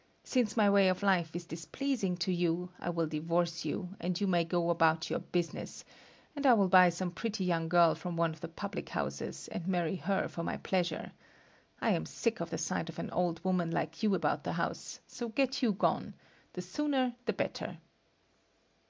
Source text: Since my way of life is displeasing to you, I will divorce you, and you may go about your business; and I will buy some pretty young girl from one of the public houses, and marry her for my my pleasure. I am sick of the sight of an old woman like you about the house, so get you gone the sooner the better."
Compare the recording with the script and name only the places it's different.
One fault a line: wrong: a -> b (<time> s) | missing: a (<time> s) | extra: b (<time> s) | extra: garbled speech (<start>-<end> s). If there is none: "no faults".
missing: my (10.6 s)